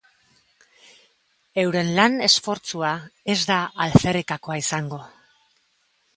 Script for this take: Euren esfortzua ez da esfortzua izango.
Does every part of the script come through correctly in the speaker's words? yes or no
no